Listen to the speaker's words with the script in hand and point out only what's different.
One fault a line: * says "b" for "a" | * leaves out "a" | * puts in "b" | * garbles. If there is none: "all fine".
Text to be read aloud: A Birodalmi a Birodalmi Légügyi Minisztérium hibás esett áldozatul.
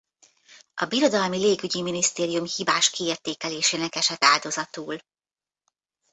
* leaves out "a Birodalmi"
* puts in "kiértékelésének"